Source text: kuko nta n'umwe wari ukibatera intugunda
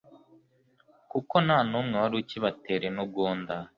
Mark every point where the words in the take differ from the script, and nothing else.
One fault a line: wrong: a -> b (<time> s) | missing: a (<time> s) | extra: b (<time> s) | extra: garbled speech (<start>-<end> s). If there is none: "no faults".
no faults